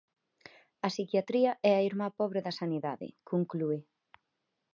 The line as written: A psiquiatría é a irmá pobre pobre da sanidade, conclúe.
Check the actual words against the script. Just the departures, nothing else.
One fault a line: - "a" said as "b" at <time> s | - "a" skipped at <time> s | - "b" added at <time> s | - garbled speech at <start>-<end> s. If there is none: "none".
- "pobre" skipped at 2.4 s